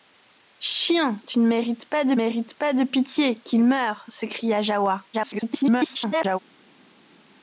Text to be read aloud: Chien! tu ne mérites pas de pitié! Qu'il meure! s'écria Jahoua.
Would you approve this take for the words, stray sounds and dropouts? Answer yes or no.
no